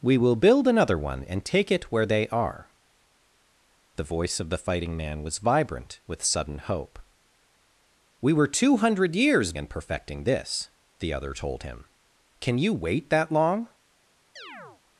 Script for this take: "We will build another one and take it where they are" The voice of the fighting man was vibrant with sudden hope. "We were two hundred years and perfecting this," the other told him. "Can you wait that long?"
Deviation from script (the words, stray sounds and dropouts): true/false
true